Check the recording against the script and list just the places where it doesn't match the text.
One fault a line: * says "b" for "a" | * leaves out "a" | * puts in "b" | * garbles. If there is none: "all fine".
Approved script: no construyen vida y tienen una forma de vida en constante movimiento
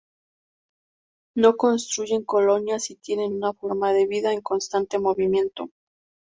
* says "colonias" for "vida"